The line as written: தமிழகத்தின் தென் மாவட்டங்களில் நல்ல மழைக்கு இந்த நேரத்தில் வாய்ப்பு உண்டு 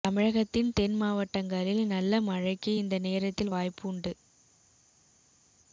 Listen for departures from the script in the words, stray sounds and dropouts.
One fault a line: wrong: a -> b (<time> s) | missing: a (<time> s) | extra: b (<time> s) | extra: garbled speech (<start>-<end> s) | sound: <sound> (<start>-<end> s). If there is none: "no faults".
no faults